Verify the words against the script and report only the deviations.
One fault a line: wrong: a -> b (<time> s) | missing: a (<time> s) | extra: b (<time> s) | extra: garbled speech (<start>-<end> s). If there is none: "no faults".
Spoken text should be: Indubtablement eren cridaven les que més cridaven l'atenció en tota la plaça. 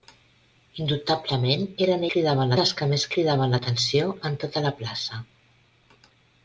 no faults